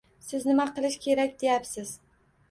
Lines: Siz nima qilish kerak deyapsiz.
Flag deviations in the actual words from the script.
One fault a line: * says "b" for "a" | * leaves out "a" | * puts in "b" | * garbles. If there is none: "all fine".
all fine